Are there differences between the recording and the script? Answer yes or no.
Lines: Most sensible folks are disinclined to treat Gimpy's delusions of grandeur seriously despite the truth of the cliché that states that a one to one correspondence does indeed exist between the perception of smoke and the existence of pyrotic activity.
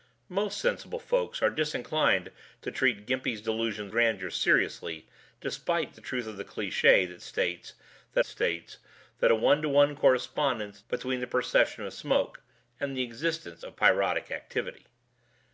yes